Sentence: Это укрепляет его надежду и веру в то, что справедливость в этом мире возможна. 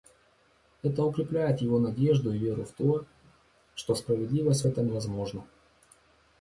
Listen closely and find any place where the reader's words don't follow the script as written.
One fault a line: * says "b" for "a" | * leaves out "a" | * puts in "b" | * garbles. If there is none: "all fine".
* leaves out "мире"